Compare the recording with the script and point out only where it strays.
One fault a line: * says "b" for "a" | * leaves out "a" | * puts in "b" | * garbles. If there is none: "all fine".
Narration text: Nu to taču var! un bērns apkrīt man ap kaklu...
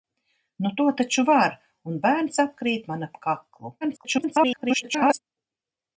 * garbles